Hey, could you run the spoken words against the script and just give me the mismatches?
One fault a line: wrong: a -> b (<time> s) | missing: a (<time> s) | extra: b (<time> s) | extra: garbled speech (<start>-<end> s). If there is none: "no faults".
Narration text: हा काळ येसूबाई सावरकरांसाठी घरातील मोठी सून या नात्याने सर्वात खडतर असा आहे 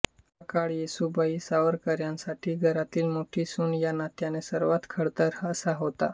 wrong: आहे -> होता (5.7 s)